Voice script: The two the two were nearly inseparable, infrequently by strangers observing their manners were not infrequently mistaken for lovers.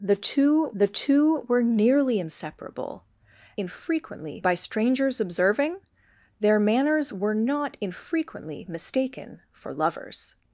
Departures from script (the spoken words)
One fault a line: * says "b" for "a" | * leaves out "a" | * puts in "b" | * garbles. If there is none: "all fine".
all fine